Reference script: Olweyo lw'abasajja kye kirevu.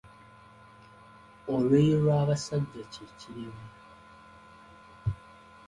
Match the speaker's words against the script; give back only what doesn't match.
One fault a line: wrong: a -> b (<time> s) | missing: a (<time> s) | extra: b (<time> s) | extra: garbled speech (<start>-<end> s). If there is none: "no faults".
no faults